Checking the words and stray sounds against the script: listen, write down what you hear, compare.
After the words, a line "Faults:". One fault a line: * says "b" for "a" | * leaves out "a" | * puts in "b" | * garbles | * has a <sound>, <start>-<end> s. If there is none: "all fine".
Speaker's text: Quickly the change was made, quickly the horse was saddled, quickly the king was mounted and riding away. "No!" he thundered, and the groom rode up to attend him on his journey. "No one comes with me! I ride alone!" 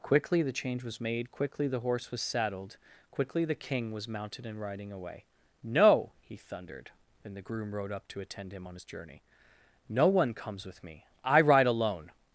Quickly the change was made, quickly the horse was saddled, quickly the king was mounted and riding away. "No!" he thundered, and the groom rode up to attend him on his journey. "No one comes with me! I ride alone!"
Faults:
all fine